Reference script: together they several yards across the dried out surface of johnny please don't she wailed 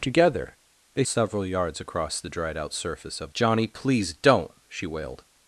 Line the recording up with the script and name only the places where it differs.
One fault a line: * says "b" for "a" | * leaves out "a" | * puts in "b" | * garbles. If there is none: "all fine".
all fine